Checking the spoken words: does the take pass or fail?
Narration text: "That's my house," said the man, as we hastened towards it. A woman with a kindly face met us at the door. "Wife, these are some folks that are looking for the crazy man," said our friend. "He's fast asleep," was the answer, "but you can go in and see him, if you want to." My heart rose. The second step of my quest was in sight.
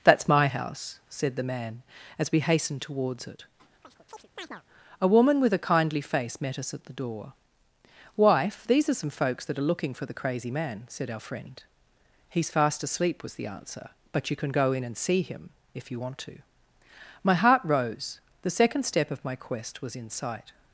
pass